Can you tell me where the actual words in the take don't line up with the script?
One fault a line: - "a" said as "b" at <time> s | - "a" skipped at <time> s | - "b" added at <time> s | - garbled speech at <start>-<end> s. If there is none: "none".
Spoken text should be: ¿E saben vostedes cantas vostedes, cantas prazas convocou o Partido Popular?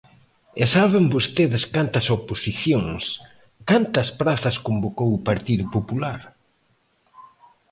- "vostedes" said as "oposicións" at 2.2 s